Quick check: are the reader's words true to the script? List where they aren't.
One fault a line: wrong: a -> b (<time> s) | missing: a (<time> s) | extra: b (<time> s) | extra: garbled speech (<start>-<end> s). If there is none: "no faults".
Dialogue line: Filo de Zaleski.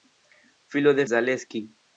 no faults